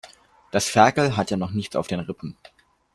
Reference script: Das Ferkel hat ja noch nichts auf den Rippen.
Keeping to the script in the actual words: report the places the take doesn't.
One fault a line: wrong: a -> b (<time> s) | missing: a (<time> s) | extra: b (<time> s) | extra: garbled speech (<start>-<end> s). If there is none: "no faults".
no faults